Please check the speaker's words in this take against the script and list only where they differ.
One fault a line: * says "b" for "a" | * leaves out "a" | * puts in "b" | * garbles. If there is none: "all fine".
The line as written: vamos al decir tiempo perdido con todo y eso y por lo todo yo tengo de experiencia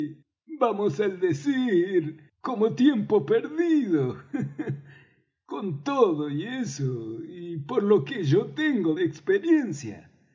* puts in "como"
* says "que" for "todo"